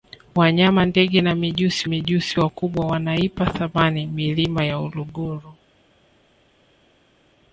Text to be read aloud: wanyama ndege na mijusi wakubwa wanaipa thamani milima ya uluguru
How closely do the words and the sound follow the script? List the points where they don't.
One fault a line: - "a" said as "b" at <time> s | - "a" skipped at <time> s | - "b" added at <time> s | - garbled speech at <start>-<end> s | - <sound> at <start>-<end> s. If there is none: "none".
- "mijusi" added at 1.8 s